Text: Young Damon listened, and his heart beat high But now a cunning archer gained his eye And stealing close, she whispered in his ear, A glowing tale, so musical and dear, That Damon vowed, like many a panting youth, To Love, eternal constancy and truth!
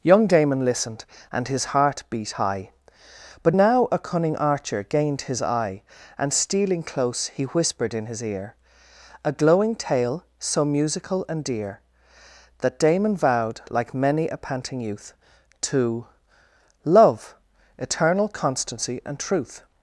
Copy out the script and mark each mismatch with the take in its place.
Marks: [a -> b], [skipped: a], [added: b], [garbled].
Young Damon listened, and his heart beat high But now a cunning archer gained his eye And stealing close, [she -> he] whispered in his ear, A glowing tale, so musical and dear, That Damon vowed, like many a panting youth, To Love, eternal constancy and truth!